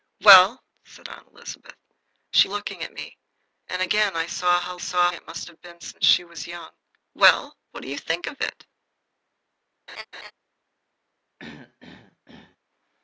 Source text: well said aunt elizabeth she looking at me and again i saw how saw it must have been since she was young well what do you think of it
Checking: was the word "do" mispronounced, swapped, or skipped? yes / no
no